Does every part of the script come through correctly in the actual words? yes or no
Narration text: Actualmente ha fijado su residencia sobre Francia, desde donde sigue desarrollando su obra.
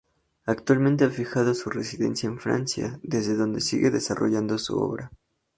no